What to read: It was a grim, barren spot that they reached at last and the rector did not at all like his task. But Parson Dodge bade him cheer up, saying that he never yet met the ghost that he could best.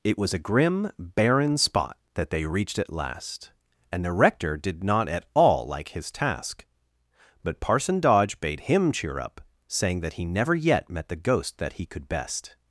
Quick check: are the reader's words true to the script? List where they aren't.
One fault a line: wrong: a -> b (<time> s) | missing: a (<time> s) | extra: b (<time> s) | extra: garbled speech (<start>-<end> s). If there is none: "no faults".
no faults